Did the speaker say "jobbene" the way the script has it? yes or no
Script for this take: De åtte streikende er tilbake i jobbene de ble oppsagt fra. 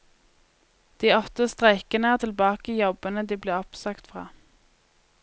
yes